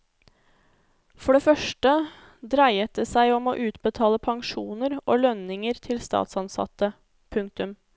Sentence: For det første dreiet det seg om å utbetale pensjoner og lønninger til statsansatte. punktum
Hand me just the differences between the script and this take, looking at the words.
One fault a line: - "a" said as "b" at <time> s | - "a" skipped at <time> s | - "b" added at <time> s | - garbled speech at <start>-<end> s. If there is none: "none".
none